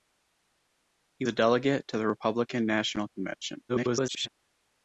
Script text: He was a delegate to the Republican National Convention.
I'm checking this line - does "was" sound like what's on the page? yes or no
no